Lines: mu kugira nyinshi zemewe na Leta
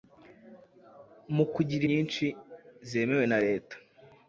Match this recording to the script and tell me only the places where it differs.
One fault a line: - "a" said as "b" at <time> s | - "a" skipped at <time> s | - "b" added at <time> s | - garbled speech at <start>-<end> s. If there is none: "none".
none